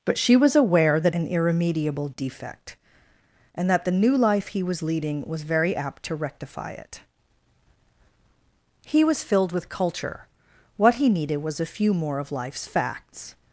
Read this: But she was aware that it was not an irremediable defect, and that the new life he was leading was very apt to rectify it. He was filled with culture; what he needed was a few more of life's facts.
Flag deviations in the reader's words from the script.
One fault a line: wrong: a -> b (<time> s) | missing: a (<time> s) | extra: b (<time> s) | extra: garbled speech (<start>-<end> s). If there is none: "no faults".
missing: it was not (1.1 s)